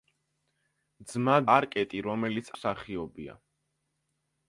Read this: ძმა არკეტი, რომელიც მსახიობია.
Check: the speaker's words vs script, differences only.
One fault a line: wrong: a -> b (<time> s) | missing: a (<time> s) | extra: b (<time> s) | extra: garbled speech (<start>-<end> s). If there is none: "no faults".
no faults